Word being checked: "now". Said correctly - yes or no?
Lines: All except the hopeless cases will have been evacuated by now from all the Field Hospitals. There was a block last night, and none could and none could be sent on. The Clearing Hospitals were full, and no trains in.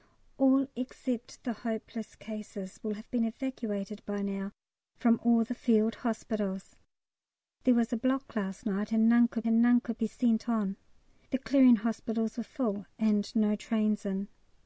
yes